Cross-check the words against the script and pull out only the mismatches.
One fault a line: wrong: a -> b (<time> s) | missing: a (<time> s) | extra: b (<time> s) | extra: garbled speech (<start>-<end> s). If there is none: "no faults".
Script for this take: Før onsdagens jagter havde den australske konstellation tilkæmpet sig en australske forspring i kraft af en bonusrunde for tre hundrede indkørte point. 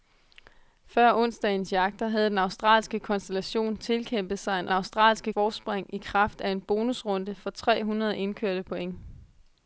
no faults